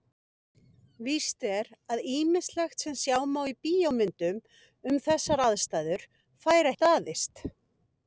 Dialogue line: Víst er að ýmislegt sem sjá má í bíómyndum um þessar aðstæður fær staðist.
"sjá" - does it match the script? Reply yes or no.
yes